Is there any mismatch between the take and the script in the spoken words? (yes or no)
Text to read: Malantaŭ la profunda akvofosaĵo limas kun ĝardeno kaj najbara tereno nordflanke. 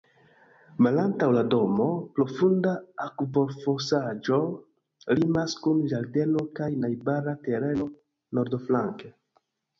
yes